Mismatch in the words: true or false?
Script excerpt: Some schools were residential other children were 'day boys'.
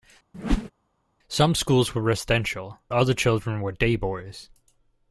false